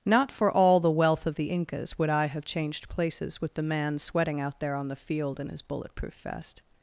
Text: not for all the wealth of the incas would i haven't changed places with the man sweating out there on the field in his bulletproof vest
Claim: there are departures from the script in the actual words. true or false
true